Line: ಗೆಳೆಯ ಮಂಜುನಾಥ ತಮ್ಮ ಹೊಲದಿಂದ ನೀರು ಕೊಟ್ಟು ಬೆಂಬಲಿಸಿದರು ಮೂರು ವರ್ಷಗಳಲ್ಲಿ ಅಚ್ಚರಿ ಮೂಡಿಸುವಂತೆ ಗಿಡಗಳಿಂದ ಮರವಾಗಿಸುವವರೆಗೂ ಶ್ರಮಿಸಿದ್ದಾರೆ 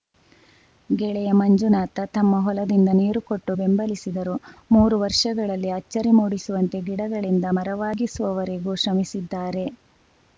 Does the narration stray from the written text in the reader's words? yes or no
no